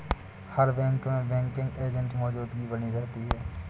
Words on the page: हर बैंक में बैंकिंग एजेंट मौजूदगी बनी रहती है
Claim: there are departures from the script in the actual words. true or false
false